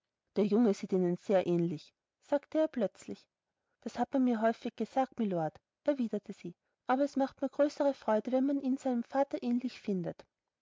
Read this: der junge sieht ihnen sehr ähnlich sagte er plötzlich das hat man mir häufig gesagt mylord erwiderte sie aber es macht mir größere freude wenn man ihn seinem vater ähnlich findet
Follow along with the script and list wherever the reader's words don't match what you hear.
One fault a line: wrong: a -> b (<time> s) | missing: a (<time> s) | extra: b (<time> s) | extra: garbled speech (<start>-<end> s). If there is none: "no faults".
no faults